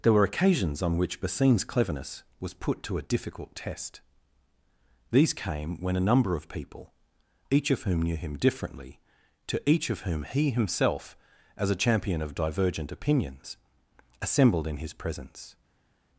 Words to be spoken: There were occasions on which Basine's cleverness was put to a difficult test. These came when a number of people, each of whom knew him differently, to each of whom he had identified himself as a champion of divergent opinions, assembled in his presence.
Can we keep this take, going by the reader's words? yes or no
no